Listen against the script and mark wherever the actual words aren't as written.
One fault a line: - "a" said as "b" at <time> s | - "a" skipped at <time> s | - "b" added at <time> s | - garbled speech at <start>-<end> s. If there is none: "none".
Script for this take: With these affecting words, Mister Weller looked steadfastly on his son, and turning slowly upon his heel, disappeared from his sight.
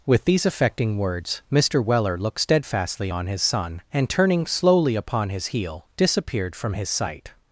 none